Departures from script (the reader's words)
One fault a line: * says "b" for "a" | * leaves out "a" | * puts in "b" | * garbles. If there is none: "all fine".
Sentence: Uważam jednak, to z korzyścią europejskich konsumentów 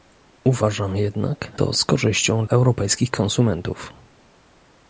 all fine